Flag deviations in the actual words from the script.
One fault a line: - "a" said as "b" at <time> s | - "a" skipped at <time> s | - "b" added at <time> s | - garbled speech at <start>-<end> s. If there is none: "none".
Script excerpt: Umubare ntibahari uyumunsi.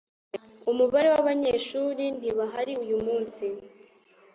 - "wabanyeshuri" added at 1.1 s